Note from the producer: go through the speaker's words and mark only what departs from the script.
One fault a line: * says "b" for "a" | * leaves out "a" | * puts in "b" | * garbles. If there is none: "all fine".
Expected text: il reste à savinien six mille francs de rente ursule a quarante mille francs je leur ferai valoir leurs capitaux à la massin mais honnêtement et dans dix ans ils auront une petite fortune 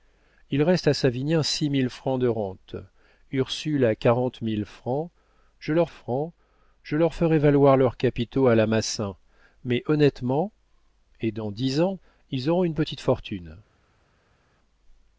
* puts in "francs je leur"